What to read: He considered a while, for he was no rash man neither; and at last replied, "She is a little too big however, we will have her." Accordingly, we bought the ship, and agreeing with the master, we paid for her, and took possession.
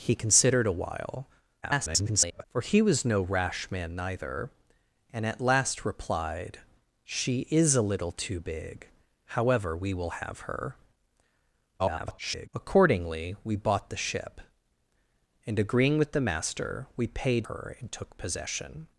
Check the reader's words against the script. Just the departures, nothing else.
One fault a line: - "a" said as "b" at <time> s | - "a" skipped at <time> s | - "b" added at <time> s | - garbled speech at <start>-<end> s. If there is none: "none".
- garbled speech at 1.6-2.4 s
- garbled speech at 11.8-12.5 s
- "for" skipped at 17.5 s